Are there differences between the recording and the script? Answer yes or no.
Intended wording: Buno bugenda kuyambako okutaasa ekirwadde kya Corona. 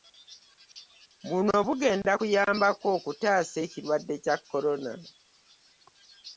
no